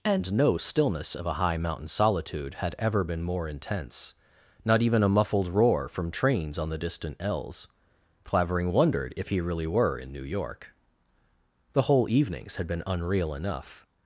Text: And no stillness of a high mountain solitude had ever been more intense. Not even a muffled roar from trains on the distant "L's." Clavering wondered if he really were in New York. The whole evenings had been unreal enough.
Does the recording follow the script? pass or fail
pass